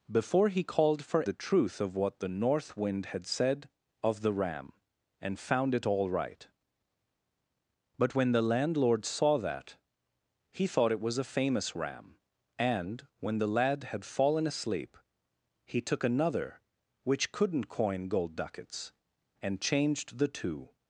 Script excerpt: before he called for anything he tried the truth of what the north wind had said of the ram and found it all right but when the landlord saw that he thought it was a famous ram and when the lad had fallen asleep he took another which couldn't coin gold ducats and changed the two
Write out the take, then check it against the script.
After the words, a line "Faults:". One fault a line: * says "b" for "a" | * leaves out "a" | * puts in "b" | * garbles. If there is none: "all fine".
before he called for the truth of what the north wind had said of the ram and found it all right but when the landlord saw that he thought it was a famous ram and when the lad had fallen asleep he took another which couldn't coin gold ducats and changed the two
Faults:
* leaves out "anything he tried"